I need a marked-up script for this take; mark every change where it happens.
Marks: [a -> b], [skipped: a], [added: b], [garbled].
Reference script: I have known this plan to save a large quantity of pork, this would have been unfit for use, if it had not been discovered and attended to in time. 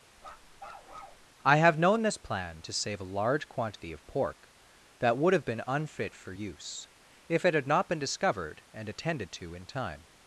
I have known this plan to save a large quantity of pork, [this -> that] would have been unfit for use, if it had not been discovered and attended to in time.